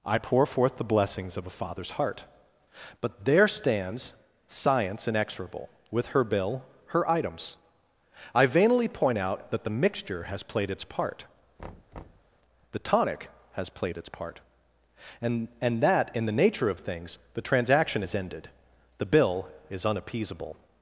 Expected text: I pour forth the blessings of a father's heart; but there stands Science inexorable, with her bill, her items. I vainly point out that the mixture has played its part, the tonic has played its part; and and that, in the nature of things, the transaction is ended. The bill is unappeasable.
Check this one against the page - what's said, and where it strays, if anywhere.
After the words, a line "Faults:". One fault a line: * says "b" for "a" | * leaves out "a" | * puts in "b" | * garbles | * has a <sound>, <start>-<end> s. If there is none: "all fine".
I pour forth the blessings of a father's heart; but there stands Science inexorable, with her bill, her items. I vainly point out that the mixture has played its part, the tonic has played its part; and and that, in the nature of things, the transaction is ended. The bill is unappeasable.
Faults:
* has a thud, 11.6-12.3 s